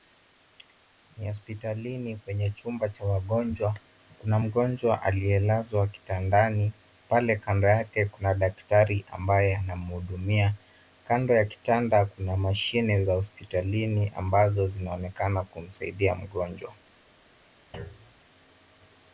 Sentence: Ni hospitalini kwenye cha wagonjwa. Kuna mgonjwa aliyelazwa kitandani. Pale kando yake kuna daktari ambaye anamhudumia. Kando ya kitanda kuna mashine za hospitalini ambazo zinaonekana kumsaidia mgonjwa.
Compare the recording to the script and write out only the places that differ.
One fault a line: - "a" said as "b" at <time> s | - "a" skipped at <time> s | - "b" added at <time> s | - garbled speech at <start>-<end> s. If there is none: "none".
- "chumba" added at 2.5 s